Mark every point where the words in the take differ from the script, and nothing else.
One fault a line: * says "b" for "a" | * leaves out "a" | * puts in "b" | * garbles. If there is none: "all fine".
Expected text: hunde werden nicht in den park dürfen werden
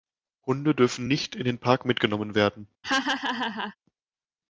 * says "dürfen" for "werden"
* says "mitgenommen" for "dürfen"